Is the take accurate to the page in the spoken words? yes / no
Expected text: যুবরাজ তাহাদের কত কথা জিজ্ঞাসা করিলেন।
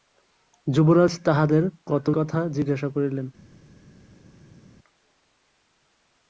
yes